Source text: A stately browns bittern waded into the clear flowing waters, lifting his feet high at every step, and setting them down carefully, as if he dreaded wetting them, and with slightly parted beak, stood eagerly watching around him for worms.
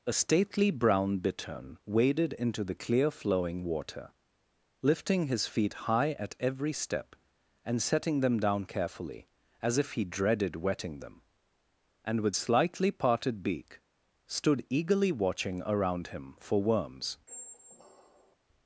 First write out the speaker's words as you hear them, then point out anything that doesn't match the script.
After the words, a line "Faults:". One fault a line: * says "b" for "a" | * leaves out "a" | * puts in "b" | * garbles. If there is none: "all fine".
A stately brown bittern waded into the clear flowing water, lifting his feet high at every step, and setting them down carefully, as if he dreaded wetting them, and with slightly parted beak, stood eagerly watching around him for worms.
Faults:
* says "brown" for "browns"
* says "water" for "waters"